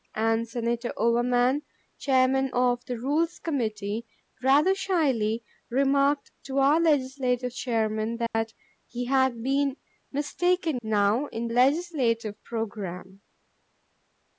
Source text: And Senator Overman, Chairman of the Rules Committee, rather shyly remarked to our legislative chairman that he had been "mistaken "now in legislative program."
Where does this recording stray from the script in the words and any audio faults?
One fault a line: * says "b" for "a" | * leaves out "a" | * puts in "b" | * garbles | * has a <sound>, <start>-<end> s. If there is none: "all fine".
* has a dropout, 8.3-8.3 s